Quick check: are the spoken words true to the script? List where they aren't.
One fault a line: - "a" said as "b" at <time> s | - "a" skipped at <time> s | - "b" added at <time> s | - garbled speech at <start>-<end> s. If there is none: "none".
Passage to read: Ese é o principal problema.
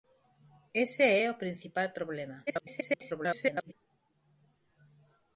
- garbled speech at 2.5-3.7 s